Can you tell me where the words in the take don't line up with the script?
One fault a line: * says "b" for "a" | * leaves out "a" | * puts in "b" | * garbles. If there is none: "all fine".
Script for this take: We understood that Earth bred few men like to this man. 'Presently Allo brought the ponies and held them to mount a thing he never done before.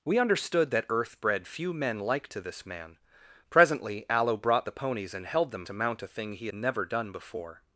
all fine